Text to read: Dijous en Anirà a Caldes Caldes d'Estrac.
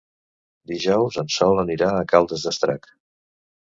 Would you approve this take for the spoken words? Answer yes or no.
no